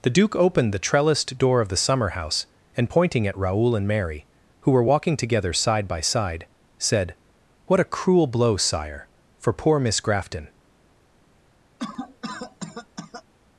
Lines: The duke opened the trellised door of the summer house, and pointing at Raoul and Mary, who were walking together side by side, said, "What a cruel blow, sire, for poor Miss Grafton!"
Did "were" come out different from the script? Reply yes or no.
no